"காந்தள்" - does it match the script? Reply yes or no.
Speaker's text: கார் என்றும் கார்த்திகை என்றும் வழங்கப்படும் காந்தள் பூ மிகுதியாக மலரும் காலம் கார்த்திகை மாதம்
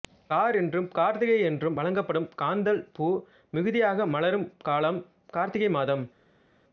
yes